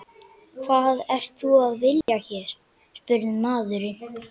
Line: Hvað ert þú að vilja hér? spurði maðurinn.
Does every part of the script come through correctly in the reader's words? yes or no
yes